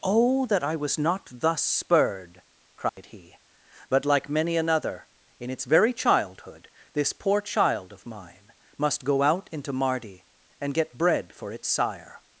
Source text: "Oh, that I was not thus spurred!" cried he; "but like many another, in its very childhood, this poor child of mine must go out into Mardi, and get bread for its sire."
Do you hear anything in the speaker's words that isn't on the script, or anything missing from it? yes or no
no